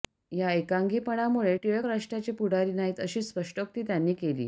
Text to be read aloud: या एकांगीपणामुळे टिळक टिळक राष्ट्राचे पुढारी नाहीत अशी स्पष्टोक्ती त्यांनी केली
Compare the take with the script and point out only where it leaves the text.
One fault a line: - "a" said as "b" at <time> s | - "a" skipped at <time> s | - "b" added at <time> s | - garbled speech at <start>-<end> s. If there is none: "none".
- "टिळक" skipped at 1.9 s